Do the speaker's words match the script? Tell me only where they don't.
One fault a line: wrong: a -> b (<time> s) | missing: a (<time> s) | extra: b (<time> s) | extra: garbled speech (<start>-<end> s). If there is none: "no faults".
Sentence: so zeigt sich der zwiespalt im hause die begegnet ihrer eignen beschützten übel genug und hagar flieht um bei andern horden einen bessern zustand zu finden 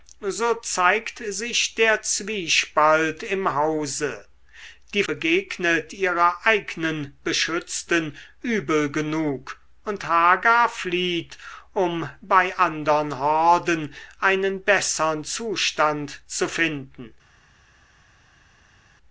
no faults